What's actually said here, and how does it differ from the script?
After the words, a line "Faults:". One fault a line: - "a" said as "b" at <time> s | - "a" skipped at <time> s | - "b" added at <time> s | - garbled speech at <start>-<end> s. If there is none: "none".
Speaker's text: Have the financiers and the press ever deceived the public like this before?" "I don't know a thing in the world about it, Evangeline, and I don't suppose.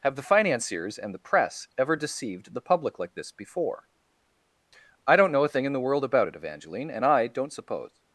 Have the financiers and the press ever deceived the public like this before?" "I don't know a thing in the world about it, Evangeline, and I don't suppose.
Faults:
none